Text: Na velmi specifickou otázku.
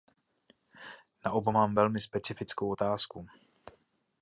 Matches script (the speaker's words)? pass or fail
fail